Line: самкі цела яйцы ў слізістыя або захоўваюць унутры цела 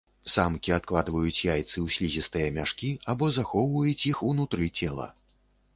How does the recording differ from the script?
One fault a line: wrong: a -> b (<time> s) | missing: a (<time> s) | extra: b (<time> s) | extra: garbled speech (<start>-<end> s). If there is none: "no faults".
wrong: цела -> адкладваюць (0.8 s)
extra: мяшкі (2.6 s)
extra: іх (4.1 s)